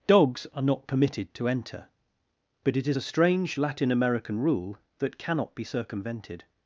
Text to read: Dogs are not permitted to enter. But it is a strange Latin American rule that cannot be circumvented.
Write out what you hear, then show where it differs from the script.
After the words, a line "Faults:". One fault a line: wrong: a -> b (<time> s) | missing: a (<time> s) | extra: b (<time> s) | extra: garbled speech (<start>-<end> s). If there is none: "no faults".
Dogs are not permitted to enter. But it is a strange Latin American rule that cannot be circumvented.
Faults:
no faults